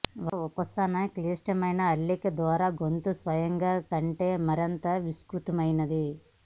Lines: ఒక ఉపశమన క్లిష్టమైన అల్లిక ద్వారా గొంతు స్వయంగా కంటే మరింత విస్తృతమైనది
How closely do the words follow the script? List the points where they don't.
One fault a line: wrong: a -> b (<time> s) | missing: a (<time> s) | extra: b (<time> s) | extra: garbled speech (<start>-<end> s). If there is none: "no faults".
no faults